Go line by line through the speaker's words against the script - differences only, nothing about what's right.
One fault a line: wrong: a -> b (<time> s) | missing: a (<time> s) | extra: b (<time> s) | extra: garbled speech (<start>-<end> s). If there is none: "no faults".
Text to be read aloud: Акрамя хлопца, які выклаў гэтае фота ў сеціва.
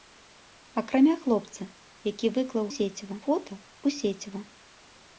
wrong: гэтае -> сеціва (2.8 s)